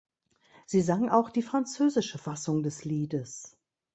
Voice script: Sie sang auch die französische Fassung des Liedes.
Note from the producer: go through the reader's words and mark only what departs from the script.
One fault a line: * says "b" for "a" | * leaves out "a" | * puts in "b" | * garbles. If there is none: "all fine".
all fine